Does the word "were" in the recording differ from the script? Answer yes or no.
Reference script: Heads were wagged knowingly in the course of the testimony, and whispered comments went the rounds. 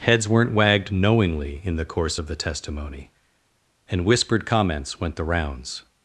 yes